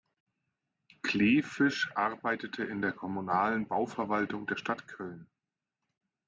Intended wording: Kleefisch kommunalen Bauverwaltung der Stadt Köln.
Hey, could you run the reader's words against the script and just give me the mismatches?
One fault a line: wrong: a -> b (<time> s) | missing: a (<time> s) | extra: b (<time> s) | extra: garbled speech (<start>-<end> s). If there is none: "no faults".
extra: arbeitete in der (1.9 s)